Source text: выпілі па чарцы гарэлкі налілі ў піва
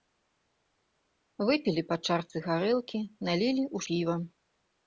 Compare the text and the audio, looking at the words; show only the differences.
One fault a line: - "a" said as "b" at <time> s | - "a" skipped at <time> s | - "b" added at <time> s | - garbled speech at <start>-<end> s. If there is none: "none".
none